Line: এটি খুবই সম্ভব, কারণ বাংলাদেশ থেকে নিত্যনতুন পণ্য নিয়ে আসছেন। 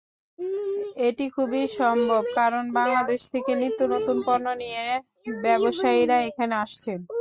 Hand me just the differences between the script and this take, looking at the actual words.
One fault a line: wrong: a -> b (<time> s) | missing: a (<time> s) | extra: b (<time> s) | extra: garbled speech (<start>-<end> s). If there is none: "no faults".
extra: ব্যবসায়ীরা এখানে (5.4 s)